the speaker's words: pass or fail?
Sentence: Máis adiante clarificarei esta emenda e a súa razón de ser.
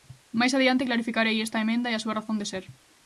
pass